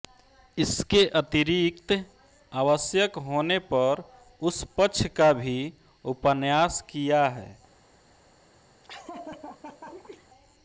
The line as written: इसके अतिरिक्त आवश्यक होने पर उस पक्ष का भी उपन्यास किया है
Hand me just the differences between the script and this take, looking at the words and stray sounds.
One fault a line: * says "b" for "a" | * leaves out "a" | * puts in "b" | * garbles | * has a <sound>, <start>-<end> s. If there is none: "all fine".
* has a laugh, 8.8-10.3 s